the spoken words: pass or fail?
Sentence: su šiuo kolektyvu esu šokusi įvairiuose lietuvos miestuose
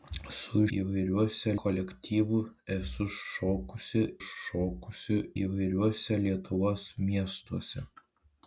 fail